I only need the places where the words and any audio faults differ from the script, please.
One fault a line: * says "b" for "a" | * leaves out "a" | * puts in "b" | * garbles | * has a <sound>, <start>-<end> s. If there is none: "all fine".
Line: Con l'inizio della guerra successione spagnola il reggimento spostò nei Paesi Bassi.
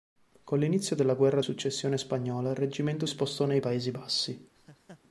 * has a laugh, 4.5-5.0 s